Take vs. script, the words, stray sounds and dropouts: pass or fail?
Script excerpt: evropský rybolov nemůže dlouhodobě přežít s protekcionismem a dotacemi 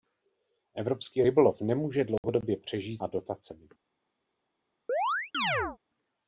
fail